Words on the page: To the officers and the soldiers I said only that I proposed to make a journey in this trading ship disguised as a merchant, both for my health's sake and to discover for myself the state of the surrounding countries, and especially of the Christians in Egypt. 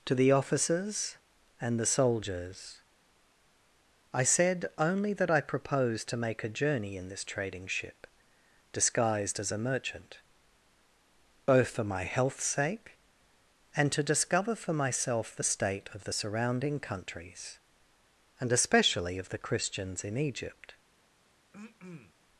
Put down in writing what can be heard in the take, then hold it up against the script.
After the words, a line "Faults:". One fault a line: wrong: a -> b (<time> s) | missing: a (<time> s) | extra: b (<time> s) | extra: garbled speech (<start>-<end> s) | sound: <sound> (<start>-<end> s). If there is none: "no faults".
To the officers and the soldiers I said only that I proposed to make a journey in this trading ship disguised as a merchant, both for my health's sake and to discover for myself the state of the surrounding countries, and especially of the Christians in Egypt.
Faults:
sound: throat clearing (21.5-22.1 s)